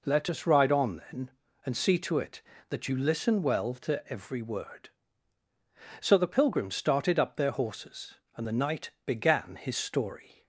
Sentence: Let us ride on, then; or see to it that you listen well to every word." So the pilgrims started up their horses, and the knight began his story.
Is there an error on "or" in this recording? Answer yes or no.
yes